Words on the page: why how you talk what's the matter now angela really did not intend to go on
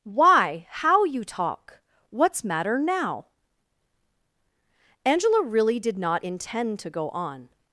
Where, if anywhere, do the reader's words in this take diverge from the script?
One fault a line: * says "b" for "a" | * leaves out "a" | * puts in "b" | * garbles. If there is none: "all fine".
* leaves out "the"